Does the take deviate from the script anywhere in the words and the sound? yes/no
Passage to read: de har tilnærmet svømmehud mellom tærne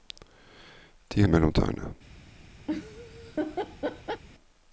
yes